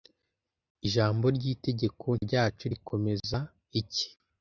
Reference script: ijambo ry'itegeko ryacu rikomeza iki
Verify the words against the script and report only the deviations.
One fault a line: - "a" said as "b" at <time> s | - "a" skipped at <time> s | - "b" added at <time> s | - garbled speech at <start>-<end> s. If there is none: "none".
none